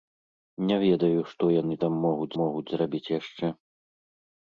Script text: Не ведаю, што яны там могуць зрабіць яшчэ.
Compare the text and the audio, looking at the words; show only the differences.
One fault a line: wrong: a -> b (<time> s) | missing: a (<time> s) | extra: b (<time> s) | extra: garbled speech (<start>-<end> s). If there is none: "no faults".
extra: могуць (2.4 s)